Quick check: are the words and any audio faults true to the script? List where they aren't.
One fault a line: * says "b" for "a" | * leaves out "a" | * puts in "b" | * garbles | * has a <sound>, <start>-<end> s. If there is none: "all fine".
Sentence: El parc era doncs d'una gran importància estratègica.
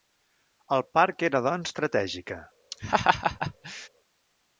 * leaves out "d'una gran importància"
* has a laugh, 2.7-3.9 s